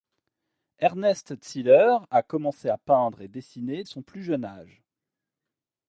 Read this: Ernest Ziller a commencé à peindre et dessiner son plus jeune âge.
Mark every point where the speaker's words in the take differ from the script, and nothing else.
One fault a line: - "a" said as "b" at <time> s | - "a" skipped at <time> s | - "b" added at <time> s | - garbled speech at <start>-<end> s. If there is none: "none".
none